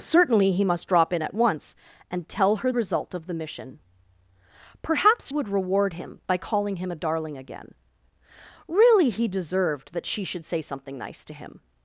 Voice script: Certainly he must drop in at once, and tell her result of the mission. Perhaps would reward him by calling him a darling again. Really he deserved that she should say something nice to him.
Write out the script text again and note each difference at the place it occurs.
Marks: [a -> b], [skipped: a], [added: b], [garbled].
Certainly he must drop in at once, and tell her result of the mission. Perhaps would reward him by calling him a darling again. Really he deserved that she should say something nice to him.